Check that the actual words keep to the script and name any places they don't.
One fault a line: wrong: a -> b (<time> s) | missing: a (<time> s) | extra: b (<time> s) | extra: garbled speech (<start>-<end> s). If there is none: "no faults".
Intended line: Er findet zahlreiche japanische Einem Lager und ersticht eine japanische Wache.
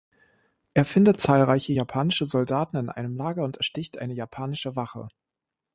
extra: Soldaten in (2.3 s)